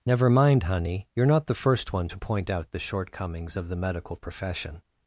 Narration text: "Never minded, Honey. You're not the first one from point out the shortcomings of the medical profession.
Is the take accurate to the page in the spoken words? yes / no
no